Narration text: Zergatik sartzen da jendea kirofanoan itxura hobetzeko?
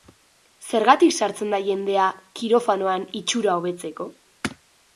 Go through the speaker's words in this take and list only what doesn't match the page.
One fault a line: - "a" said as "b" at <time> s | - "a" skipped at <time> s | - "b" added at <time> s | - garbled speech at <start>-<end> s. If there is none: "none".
none